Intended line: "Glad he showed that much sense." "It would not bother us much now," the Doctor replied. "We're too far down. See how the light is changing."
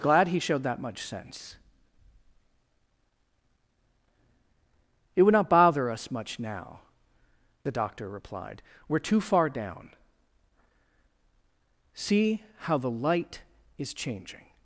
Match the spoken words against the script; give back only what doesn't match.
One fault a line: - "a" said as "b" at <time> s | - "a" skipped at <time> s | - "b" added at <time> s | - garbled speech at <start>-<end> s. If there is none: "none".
none